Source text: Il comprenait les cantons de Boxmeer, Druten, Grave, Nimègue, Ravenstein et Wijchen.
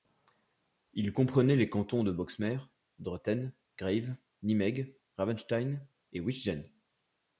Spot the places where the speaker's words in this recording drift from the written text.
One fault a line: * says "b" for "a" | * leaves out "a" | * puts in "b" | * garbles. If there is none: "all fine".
all fine